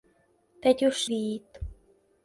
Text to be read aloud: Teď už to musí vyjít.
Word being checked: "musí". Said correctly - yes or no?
no